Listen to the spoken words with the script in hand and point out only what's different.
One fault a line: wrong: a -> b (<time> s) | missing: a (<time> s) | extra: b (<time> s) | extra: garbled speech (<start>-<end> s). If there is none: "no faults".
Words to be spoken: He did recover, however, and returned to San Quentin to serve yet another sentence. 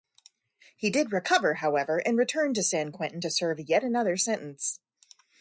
no faults